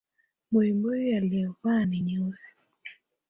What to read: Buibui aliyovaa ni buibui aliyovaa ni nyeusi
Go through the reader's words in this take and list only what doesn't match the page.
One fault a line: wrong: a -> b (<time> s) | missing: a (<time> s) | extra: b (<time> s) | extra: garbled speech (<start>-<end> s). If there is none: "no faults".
missing: buibui aliyovaa ni (2.0 s)